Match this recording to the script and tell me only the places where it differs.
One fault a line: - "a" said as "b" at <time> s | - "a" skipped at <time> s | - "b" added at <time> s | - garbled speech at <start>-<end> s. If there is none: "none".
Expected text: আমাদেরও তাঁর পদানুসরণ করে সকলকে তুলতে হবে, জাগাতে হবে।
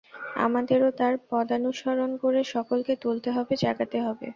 none